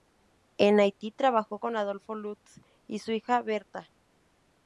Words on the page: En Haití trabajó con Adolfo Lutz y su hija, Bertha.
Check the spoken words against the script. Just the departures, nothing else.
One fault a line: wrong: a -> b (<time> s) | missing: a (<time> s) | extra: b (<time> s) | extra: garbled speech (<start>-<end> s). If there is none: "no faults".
no faults